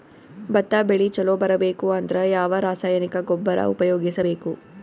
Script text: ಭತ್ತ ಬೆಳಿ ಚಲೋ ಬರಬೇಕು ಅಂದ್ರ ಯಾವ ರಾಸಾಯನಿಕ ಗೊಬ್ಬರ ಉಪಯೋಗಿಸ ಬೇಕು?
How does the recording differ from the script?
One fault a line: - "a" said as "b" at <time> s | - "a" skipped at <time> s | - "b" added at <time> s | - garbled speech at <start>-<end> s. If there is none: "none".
none